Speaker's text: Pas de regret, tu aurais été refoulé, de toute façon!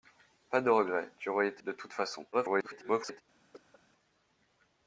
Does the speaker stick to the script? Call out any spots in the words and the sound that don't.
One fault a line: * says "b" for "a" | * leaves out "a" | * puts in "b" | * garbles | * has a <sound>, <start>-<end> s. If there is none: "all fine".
* leaves out "refoulé"
* garbles
* has a cough, 3.5-3.8 s